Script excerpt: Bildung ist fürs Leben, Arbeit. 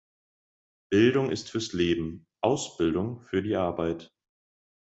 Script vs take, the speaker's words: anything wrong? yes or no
yes